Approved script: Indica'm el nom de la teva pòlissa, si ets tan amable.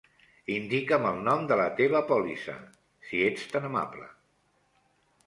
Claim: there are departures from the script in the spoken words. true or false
false